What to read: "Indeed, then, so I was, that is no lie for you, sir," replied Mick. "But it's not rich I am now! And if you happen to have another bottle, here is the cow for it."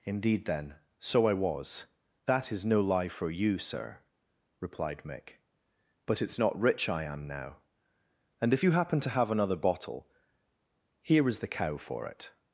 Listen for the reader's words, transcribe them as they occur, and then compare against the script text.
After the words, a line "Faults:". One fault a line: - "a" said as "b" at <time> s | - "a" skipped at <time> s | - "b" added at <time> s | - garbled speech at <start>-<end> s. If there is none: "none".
"Indeed, then, so I was, that is no lie for you, sir," replied Mick. "But it's not rich I am now! And if you happen to have another bottle, here is the cow for it."
Faults:
none